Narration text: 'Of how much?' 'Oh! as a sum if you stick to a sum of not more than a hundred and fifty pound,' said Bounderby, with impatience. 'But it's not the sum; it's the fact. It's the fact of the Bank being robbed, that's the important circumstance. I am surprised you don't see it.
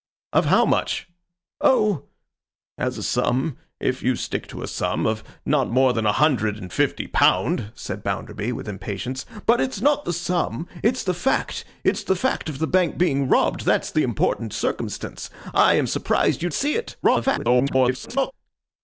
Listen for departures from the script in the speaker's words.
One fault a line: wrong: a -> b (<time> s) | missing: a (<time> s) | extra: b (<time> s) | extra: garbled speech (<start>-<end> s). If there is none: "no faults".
missing: don't (16.5 s)
extra: garbled speech (17.0-18.3 s)